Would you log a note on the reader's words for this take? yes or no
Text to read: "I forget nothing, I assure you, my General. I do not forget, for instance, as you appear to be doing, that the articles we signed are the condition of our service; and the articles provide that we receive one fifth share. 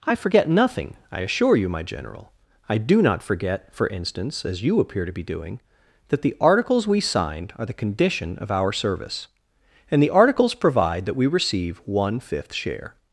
no